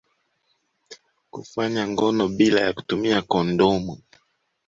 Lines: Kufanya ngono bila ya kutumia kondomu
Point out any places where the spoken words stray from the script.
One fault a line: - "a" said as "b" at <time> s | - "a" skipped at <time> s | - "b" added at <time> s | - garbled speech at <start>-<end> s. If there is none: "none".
none